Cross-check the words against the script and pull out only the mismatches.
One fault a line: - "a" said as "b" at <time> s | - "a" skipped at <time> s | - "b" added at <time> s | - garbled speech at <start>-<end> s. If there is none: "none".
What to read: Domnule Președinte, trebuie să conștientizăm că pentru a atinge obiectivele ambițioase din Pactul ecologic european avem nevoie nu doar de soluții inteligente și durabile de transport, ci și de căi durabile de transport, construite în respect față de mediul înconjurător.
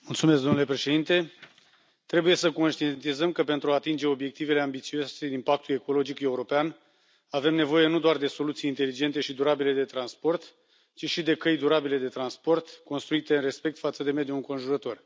none